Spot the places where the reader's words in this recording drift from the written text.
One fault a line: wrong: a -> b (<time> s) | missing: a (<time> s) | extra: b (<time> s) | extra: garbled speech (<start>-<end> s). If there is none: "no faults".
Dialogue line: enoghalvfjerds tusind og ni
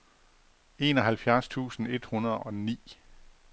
extra: et hundrede (1.9 s)